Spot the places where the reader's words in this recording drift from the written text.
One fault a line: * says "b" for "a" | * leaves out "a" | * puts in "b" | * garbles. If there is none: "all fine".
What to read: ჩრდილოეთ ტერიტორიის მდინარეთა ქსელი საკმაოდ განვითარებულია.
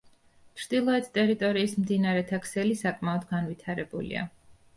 all fine